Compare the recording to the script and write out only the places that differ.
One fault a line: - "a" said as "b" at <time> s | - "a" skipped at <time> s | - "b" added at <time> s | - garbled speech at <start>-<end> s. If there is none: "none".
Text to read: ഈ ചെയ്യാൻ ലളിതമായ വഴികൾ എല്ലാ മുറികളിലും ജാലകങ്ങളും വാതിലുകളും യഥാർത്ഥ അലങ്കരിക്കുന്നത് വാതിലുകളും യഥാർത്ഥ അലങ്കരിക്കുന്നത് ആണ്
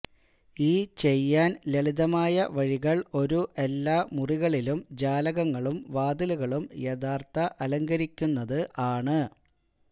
- "ഒരു" added at 3.1 s
- "വാതിലുകളും യഥാർത്ഥ അലങ്കരിക്കുന്നത്" skipped at 8.6 s